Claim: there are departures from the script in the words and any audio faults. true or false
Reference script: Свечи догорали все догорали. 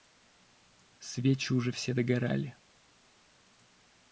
true